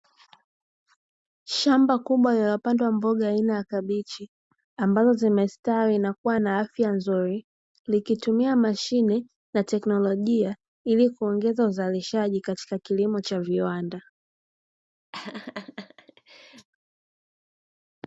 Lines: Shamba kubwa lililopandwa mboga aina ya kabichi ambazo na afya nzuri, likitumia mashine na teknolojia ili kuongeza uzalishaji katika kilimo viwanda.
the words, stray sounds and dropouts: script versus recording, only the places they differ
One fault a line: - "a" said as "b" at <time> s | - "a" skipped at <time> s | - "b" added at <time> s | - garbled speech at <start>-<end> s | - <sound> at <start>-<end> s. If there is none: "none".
- "zimestawi" added at 5.1 s
- "kuwa na" added at 6.1 s
- "cha" added at 13.2 s
- laugh at 15.1-16.7 s